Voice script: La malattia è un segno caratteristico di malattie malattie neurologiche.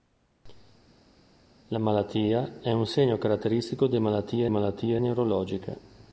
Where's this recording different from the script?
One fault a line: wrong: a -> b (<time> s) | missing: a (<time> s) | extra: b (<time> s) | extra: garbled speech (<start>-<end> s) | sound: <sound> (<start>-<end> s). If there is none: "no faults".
no faults